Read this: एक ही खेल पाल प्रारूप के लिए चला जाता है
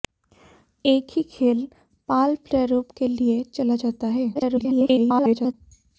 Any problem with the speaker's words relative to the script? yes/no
yes